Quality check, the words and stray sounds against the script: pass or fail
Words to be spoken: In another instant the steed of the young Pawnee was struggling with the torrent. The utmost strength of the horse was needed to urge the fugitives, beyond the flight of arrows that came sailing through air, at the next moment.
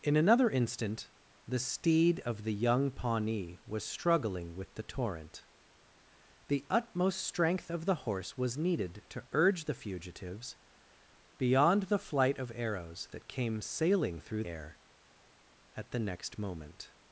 pass